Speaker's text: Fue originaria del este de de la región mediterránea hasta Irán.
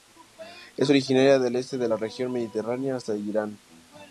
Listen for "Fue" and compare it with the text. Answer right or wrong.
wrong